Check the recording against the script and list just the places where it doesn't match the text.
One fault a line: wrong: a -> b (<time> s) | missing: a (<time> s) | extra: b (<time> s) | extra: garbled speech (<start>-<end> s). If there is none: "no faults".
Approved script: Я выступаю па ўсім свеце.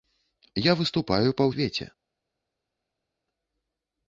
missing: ўсім (1.5 s)